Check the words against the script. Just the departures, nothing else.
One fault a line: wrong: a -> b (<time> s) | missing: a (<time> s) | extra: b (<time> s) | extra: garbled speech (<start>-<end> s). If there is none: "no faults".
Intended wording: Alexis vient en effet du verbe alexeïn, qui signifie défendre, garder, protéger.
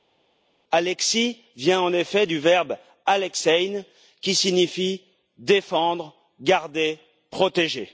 no faults